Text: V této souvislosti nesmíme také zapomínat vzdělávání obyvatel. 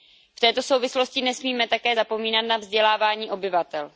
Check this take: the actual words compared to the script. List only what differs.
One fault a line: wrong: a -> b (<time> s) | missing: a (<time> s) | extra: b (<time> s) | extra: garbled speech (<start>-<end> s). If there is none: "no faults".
extra: na (2.5 s)